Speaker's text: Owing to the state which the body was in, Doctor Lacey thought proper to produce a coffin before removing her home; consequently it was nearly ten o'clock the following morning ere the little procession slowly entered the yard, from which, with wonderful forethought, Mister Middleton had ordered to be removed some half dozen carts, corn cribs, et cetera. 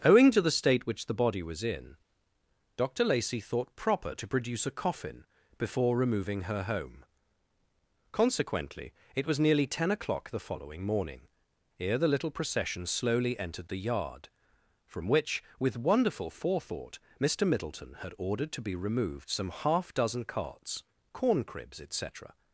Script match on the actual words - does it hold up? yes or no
yes